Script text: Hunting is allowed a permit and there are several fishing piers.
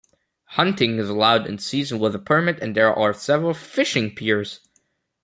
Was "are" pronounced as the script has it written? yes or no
yes